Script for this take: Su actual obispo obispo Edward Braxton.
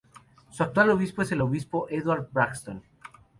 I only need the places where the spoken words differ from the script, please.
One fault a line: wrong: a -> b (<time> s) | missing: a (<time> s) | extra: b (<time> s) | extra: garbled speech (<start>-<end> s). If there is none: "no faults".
extra: es el (1.2 s)